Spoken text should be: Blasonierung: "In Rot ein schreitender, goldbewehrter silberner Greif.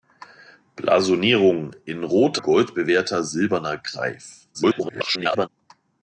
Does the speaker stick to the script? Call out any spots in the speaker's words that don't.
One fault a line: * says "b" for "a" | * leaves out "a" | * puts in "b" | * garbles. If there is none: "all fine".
* leaves out "ein schreitender"
* garbles